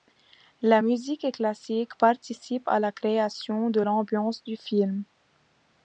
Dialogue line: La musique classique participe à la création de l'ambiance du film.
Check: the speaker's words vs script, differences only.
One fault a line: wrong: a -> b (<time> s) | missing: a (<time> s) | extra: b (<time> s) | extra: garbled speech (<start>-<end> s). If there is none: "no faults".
no faults